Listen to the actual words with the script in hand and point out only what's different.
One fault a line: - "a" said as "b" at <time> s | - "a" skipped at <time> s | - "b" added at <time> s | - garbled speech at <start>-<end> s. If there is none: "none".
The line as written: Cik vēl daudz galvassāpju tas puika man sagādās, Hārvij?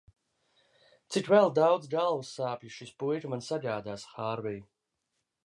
- "tas" said as "šis" at 2.8 s